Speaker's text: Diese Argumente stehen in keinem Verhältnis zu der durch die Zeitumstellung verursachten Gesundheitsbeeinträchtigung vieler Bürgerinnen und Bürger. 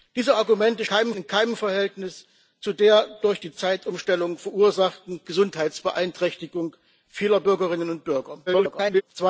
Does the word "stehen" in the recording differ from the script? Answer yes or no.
yes